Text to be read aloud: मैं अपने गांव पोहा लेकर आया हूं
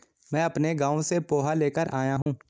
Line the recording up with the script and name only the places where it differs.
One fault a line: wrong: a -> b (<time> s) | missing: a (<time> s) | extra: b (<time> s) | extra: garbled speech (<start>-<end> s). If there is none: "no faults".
extra: से (1.0 s)